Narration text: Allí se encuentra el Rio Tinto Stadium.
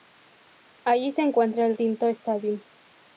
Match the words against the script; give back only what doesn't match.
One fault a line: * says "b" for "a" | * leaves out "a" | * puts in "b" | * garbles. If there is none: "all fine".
* leaves out "Rio"